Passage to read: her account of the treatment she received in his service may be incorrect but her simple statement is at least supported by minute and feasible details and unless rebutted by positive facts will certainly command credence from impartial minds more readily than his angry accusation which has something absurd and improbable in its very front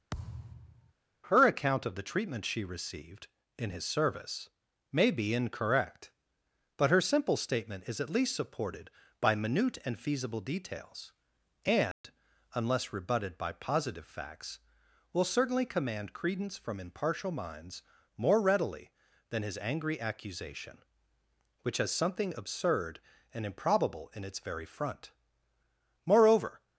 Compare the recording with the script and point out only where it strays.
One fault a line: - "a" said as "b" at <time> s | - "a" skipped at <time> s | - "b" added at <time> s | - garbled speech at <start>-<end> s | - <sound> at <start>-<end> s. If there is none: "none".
- thud at 0.1-0.9 s
- dropout at 11.9-12.0 s
- "moreover" added at 26.1 s